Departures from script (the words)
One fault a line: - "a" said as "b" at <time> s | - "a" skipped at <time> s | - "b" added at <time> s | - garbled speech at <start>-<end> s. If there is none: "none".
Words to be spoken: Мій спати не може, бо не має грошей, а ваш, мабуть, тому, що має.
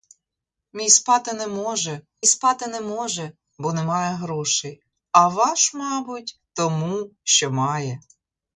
- "спати не може" added at 2.3 s